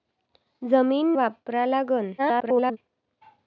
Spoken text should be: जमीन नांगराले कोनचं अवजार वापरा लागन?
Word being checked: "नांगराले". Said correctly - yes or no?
no